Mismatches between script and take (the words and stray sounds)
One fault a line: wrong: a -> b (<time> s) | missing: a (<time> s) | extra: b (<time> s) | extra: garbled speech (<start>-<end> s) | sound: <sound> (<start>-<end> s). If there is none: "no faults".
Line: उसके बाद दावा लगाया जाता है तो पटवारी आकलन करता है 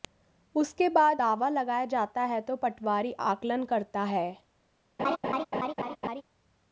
sound: laugh (5.0-6.2 s)